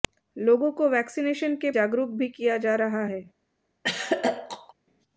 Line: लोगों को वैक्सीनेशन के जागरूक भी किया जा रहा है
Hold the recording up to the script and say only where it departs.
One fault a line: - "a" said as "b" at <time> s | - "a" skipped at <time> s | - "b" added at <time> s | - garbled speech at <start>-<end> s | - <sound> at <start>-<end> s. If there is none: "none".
- throat clearing at 3.8-4.7 s